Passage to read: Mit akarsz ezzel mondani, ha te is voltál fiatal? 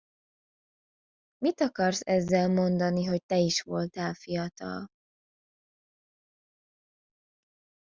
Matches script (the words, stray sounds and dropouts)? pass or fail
fail